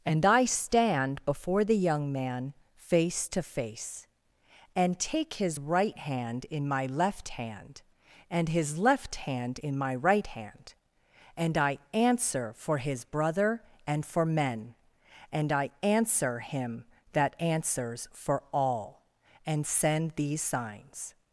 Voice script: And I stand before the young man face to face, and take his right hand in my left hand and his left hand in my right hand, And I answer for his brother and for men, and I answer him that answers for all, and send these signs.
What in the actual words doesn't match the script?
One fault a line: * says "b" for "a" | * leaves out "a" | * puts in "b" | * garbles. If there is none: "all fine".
all fine